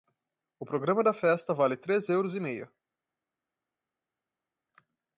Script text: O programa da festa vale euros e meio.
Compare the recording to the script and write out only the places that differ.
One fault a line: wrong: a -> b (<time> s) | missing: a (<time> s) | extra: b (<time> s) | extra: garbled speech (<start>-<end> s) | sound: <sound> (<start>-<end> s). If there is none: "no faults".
extra: três (1.8 s)